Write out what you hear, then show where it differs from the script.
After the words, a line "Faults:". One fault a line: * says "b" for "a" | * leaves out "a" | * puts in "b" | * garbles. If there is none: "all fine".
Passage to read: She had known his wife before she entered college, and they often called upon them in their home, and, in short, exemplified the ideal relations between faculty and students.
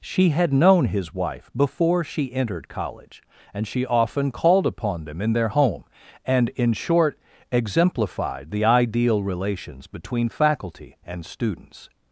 She had known his wife before she entered college, and she often called upon them in their home, and, in short, exemplified the ideal relations between faculty and students.
Faults:
* says "she" for "they"